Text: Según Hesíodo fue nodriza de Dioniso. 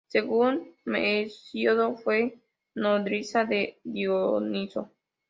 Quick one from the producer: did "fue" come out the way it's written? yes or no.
yes